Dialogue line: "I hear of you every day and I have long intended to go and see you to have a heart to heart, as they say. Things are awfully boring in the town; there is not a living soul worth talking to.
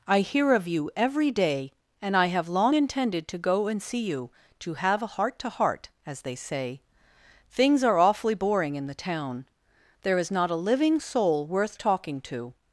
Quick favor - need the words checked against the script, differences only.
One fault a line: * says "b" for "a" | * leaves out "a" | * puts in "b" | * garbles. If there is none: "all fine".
all fine